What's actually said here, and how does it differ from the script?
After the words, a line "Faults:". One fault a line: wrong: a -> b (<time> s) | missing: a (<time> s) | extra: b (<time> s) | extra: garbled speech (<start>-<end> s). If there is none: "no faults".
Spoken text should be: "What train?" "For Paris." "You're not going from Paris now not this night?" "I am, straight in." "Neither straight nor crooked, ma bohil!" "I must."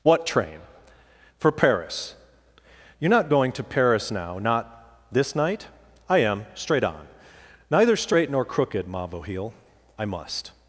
"What train?" "For Paris." "You're not going to Paris now not this night?" "I am, straight on." "Neither straight nor crooked, ma bohil!" "I must."
Faults:
wrong: from -> to (3.5 s)
wrong: in -> on (6.8 s)